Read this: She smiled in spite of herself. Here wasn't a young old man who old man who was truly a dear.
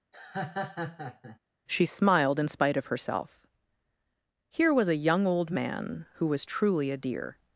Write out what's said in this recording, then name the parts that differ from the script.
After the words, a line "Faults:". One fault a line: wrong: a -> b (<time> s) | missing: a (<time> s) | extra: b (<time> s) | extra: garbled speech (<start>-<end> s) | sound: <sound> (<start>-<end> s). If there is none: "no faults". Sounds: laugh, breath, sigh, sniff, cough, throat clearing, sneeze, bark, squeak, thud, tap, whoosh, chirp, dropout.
She smiled in spite of herself. Here was a young old man who was truly a dear.
Faults:
sound: laugh (0.1-1.4 s)
wrong: wasn't -> was (4.7 s)
missing: old man who (6.3 s)